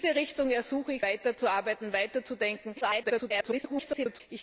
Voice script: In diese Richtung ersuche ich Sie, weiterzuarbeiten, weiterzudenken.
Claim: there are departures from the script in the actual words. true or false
true